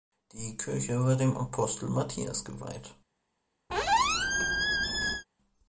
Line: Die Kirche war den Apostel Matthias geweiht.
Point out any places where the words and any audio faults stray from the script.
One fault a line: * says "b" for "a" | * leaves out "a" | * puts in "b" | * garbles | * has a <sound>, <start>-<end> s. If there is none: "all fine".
* says "dem" for "den"
* has a squeak, 3.7-5.2 s